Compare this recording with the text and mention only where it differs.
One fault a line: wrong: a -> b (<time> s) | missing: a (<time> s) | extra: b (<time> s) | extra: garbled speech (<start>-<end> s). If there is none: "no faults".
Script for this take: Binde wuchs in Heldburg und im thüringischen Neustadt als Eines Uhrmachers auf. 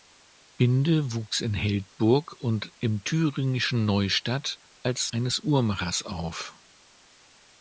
no faults